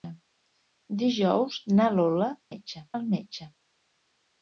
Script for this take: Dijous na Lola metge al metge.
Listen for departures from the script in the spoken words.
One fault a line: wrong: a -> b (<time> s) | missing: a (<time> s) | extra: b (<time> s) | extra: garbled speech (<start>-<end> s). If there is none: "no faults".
no faults